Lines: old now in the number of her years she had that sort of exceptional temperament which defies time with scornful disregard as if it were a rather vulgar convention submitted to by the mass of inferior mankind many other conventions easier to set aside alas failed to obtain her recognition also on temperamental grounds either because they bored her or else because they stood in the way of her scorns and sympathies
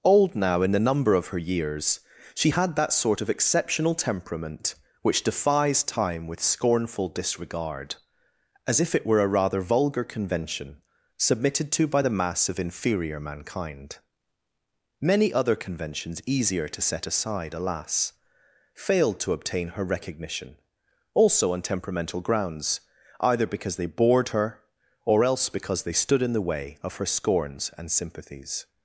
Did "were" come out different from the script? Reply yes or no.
no